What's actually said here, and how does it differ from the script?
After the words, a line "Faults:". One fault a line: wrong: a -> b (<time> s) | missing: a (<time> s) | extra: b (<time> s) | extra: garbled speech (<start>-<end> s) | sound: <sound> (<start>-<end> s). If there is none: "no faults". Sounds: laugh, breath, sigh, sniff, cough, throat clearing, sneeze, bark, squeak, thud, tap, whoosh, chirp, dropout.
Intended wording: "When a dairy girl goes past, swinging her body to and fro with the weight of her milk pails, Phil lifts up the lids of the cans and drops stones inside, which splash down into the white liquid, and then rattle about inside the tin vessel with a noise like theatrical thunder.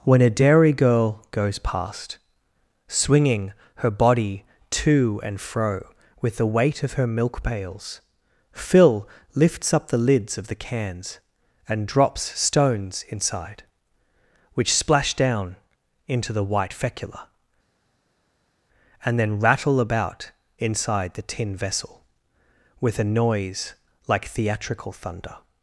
"When a dairy girl goes past, swinging her body to and fro with the weight of her milk pails, Phil lifts up the lids of the cans and drops stones inside, which splash down into the white fecula, and then rattle about inside the tin vessel with a noise like theatrical thunder.
Faults:
wrong: liquid -> fecula (16.7 s)